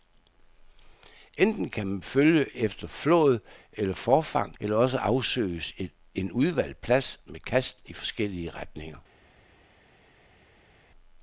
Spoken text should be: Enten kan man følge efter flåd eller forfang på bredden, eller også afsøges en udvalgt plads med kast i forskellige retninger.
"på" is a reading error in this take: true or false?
true